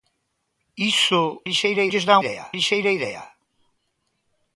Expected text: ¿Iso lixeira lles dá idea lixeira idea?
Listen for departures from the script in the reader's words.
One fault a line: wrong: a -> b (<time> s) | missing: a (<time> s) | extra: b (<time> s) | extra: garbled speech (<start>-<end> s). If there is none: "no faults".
no faults